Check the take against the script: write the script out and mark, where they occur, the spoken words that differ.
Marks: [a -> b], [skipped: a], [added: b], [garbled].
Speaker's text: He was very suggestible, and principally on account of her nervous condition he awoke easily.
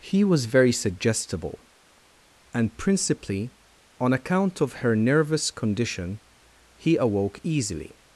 He was very suggestible, and principally on account of her nervous condition he awoke easily.